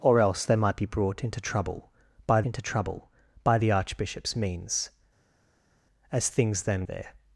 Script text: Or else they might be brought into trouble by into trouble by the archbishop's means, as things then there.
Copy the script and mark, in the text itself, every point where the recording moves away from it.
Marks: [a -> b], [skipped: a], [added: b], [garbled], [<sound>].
Or else they might be brought into trouble by into trouble by the archbishop's means, as things then there.